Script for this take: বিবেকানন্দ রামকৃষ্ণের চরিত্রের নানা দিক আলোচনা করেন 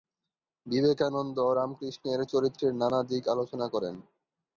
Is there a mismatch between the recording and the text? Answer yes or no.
no